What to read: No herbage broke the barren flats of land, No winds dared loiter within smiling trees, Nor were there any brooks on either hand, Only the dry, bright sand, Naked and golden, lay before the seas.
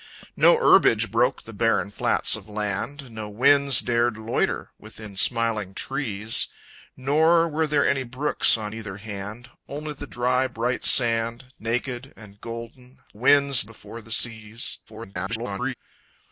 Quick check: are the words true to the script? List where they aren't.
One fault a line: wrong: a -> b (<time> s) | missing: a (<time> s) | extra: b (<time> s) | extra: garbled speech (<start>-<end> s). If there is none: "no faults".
wrong: lay -> winds (13.1 s)
extra: garbled speech (14.9-15.7 s)